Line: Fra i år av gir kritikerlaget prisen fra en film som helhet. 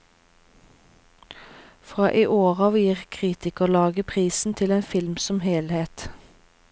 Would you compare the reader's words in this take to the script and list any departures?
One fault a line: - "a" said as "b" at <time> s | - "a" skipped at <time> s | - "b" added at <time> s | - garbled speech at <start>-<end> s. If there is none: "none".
- "fra" said as "til" at 4.5 s